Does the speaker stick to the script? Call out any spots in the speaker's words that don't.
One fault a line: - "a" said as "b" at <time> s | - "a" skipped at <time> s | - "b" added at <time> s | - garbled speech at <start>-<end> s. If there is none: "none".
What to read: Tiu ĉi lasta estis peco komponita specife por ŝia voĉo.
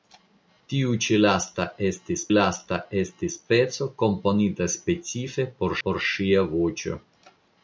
- "lasta estis" added at 2.3 s
- "por" added at 5.9 s